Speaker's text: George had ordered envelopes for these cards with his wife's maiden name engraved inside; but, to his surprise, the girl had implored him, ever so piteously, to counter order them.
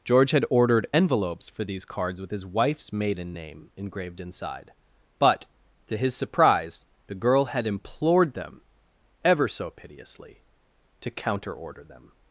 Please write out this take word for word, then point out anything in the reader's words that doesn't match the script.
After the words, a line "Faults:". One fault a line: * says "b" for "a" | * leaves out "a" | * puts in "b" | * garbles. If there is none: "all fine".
George had ordered envelopes for these cards with his wife's maiden name engraved inside; but, to his surprise, the girl had implored them, ever so piteously, to counter order them.
Faults:
* says "them" for "him"